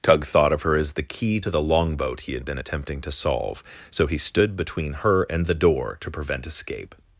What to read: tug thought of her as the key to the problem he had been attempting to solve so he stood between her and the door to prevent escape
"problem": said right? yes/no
no